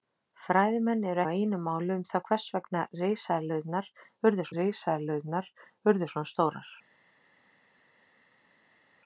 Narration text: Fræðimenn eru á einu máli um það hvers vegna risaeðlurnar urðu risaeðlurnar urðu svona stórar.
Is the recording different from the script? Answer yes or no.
no